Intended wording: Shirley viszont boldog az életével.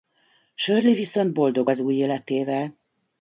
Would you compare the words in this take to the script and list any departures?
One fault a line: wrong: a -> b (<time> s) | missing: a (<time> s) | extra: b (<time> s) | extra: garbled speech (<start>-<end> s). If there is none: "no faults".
extra: új (1.8 s)